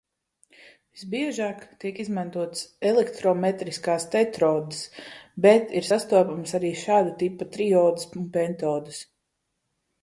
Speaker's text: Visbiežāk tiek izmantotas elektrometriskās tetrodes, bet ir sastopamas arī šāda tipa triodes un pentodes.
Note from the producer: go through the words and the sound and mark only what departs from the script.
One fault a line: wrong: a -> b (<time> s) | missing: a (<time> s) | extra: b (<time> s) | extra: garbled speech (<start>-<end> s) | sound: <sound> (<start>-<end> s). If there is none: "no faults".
no faults